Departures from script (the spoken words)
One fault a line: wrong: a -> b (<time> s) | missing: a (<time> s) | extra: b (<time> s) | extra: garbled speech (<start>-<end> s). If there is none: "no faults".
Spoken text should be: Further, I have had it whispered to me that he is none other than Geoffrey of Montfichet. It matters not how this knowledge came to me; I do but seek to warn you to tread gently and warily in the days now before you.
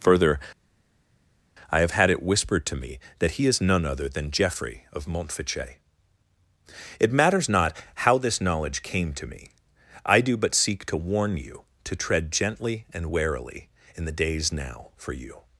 wrong: before -> for (14.9 s)